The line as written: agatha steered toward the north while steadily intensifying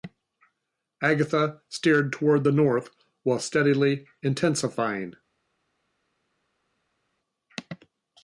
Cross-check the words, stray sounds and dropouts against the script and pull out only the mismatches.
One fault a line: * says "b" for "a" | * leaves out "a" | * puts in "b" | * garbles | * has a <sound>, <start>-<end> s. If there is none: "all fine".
all fine